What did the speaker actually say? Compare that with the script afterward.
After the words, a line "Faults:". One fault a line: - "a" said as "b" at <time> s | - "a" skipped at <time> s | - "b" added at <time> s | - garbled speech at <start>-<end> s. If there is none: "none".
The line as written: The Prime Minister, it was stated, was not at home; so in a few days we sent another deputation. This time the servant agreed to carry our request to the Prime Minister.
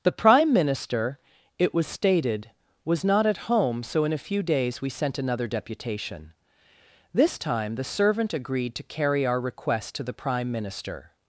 The Prime Minister, it was stated, was not at home; so in a few days we sent another deputation. This time the servant agreed to carry our request to the Prime Minister.
Faults:
none